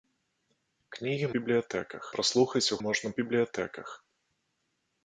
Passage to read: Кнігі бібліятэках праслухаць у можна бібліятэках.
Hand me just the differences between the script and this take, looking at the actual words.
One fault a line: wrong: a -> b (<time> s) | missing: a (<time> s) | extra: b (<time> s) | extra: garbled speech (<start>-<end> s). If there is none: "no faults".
no faults